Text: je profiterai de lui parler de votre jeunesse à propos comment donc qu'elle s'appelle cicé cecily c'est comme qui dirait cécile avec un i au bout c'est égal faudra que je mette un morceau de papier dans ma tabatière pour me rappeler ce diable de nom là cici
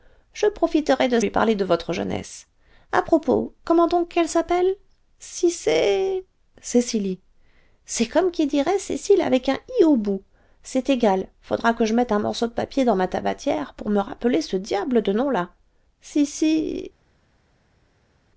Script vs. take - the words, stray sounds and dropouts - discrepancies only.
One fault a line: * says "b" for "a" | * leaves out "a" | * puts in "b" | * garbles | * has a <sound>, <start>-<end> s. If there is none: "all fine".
all fine